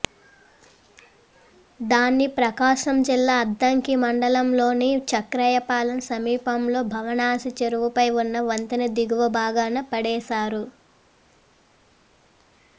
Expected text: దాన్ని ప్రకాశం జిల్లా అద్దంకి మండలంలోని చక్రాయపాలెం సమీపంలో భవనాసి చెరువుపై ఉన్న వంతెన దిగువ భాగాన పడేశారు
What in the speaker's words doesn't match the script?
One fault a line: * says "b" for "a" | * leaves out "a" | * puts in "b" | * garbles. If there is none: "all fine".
all fine